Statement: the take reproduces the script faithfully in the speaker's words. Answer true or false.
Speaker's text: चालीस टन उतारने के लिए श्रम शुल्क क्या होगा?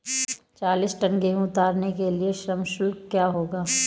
false